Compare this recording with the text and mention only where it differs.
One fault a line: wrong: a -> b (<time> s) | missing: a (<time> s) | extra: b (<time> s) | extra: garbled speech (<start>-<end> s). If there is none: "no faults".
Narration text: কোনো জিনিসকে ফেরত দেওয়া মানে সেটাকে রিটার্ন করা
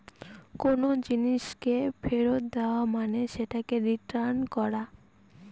no faults